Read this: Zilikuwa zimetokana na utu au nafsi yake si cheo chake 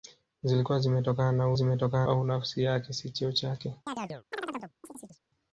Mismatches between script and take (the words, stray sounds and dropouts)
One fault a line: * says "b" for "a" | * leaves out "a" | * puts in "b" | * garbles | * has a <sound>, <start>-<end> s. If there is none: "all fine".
* says "zimetokana" for "utu"
* has a chirp, 3.9-5.2 s